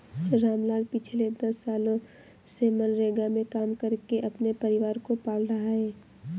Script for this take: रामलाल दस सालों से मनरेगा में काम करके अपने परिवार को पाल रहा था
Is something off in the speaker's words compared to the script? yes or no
yes